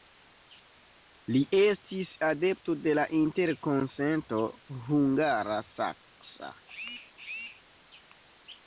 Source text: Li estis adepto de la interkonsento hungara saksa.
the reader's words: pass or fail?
pass